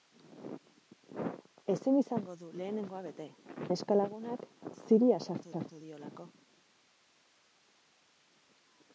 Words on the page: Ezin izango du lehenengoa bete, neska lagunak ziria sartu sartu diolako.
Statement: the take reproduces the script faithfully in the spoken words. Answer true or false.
true